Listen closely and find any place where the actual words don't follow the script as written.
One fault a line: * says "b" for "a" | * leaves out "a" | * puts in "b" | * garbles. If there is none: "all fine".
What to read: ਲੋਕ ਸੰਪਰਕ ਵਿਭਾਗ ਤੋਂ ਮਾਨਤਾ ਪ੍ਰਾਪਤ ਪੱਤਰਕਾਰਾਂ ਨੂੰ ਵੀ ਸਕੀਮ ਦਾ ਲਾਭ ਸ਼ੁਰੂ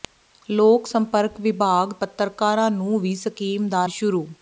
* leaves out "ਤੋਂ ਮਾਨਤਾ ਪ੍ਰਾਪਤ"
* leaves out "ਲਾਭ"